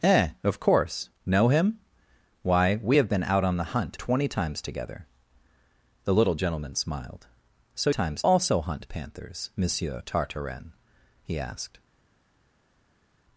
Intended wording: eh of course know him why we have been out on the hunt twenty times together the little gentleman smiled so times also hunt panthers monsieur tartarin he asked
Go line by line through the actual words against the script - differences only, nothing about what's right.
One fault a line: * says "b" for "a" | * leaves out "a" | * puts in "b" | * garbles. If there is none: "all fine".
all fine